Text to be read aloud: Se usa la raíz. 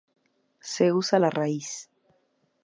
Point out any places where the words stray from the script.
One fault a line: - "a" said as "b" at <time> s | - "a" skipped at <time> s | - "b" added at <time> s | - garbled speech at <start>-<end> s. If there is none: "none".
none